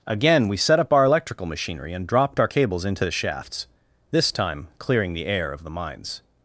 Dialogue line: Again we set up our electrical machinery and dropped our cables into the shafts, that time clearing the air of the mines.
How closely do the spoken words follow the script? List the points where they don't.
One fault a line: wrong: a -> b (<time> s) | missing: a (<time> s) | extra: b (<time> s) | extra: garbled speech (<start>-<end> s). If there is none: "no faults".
wrong: that -> this (4.1 s)